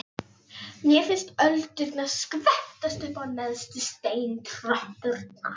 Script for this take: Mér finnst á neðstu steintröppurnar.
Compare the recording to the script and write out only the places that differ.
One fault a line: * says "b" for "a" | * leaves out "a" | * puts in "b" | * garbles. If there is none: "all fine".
* puts in "öldurnar skvettast upp"